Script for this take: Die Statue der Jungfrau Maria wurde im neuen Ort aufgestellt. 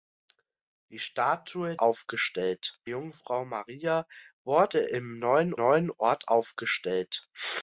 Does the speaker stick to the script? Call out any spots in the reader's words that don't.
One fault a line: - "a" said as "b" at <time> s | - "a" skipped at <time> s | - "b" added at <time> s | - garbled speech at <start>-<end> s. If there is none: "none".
- "der" said as "aufgestellt" at 1.8 s
- "neuen" added at 5.6 s